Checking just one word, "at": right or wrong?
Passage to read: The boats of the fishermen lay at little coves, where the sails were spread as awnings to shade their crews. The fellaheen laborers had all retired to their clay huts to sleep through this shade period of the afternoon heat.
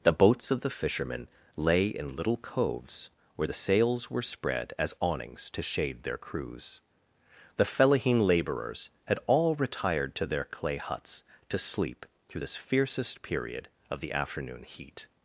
wrong